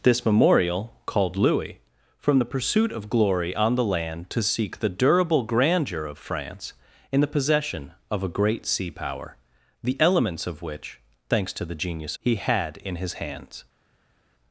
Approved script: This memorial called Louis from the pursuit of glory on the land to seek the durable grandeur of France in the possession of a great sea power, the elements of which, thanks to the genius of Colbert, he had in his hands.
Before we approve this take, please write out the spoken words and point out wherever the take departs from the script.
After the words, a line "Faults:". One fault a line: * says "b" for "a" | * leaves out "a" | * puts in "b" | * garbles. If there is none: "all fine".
This memorial called Louis from the pursuit of glory on the land to seek the durable grandeur of France in the possession of a great sea power, the elements of which, thanks to the genius he had in his hands.
Faults:
* leaves out "of Colbert"